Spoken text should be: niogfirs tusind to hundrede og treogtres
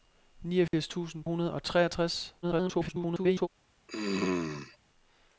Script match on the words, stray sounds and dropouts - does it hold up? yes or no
no